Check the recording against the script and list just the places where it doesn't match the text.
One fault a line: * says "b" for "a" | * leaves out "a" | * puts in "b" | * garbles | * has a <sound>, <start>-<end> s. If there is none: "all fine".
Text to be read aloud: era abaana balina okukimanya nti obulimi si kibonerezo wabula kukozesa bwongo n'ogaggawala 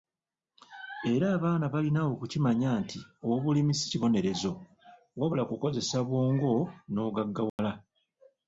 * has a dropout, 7.5-7.6 s